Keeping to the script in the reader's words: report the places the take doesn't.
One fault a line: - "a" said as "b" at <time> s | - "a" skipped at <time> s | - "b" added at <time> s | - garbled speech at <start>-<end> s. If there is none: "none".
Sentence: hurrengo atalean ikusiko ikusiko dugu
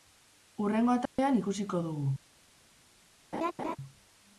- "ikusiko" skipped at 1.8 s